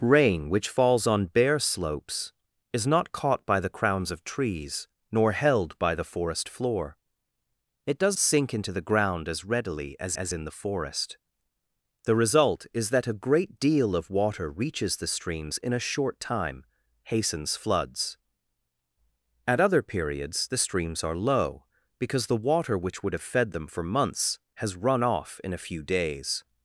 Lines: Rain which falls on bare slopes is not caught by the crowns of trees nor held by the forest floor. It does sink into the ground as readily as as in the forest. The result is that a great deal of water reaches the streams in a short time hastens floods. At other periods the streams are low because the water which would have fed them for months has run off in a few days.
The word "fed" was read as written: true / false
true